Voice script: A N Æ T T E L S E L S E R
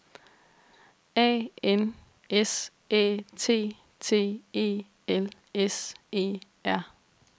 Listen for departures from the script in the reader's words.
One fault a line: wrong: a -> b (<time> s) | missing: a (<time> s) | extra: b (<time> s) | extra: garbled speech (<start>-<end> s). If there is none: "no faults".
extra: S (2.3 s)
missing: L S E (6.4 s)